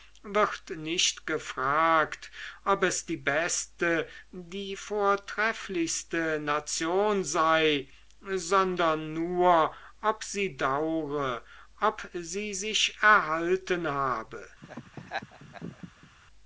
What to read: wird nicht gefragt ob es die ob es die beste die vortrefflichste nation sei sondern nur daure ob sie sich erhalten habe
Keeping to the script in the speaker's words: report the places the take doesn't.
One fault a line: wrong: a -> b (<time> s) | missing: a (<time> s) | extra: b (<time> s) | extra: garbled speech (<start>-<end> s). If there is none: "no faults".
missing: ob es die (3.2 s)
extra: ob sie (10.0 s)